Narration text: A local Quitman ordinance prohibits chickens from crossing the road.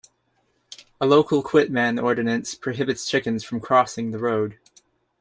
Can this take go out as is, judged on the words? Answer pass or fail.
pass